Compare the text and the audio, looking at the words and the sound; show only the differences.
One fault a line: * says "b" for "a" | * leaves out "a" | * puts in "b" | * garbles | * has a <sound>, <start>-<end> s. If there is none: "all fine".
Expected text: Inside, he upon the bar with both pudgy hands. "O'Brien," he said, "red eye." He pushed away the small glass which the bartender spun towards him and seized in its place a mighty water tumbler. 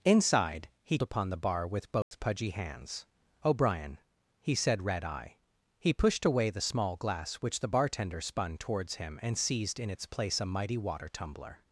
* has a dropout, 2.0-2.1 s